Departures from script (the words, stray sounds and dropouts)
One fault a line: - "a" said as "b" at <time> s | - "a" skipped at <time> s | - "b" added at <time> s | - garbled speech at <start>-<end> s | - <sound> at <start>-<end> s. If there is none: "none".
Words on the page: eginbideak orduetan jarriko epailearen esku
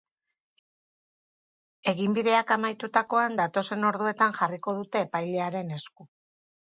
- "amaitutakoan datozen" added at 2.6 s
- "dute" added at 4.8 s